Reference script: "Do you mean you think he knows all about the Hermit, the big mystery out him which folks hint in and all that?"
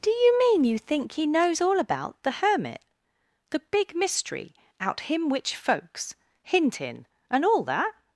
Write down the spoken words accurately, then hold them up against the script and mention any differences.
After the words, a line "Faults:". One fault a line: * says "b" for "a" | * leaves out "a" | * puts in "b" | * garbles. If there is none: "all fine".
"Do you mean you think he knows all about the Hermit, the big mystery out him which folks hint in and all that?"
Faults:
all fine